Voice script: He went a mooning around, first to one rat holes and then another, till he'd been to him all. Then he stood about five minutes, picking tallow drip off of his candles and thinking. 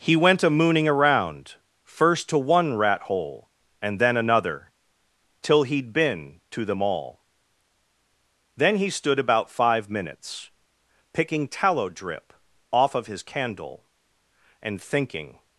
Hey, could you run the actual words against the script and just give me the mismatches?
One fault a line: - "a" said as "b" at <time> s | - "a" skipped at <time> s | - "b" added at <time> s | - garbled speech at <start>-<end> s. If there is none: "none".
- "holes" said as "hole" at 3.0 s
- "him" said as "them" at 6.7 s
- "candles" said as "candle" at 13.2 s